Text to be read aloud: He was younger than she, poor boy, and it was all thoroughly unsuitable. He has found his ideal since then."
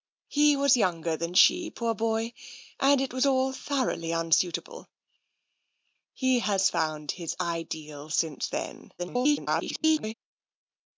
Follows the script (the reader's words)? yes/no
no